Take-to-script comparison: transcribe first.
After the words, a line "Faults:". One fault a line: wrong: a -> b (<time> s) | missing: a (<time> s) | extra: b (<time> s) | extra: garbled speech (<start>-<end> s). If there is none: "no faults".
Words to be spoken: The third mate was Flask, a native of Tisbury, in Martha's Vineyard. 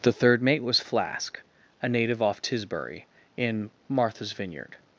The third mate was Flask, a native off Tisbury, in Martha's Vineyard.
Faults:
wrong: of -> off (2.2 s)